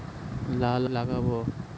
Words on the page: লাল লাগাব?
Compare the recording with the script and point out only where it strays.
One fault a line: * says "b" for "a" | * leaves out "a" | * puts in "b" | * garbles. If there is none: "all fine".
all fine